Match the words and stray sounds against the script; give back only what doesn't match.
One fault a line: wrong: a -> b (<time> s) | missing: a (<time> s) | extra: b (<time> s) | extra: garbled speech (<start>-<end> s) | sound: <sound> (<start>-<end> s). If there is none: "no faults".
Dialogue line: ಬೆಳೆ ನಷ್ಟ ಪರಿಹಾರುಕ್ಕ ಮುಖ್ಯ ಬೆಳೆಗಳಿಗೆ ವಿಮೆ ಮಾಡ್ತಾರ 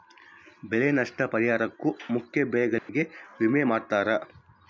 sound: dropout (2.8-2.9 s)